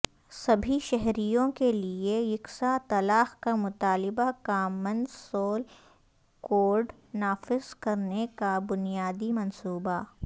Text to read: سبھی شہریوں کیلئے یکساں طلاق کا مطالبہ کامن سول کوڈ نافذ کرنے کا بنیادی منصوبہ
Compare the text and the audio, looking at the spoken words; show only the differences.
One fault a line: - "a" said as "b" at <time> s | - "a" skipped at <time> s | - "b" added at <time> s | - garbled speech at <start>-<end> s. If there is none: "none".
none